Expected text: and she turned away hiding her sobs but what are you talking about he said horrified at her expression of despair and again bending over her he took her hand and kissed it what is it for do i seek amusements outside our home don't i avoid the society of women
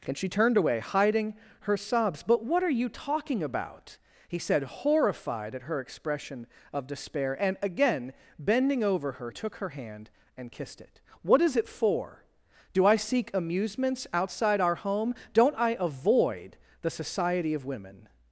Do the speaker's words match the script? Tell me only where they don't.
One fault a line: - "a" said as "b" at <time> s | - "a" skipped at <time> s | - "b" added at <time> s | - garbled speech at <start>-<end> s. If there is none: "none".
- "he" skipped at 9.3 s